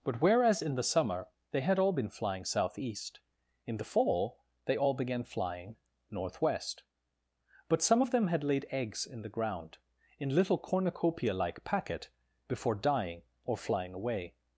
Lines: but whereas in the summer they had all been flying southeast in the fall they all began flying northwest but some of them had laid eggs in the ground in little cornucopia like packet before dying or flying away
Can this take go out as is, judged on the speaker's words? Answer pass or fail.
pass